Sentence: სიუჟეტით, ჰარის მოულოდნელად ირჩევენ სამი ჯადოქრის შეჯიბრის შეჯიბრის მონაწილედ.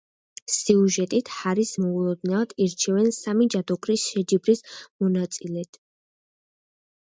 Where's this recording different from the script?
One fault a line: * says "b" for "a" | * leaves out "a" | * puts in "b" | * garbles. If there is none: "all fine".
* leaves out "შეჯიბრის"